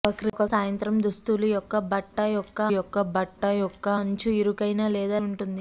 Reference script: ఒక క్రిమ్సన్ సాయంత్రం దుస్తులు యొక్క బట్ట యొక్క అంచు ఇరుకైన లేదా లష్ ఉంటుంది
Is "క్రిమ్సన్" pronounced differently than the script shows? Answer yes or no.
yes